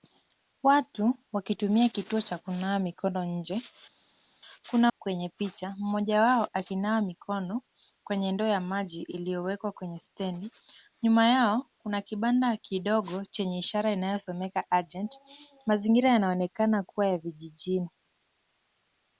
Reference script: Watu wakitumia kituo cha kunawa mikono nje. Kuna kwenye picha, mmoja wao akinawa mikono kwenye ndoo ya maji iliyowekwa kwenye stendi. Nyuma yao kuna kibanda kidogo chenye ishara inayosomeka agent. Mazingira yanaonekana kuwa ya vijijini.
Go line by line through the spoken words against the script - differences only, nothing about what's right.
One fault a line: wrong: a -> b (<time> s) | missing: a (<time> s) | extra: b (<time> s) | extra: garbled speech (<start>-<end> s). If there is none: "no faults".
no faults